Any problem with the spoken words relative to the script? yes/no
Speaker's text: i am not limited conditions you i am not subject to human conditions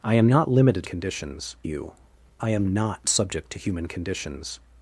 no